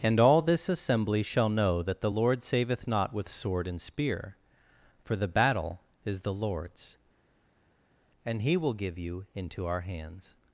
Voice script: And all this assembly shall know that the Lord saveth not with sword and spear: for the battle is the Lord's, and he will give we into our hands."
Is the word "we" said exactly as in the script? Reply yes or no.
no